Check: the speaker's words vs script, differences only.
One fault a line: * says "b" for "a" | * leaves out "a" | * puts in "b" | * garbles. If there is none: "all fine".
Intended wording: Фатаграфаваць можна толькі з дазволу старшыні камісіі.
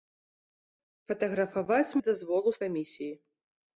* leaves out "можна толькі"
* leaves out "старшыні"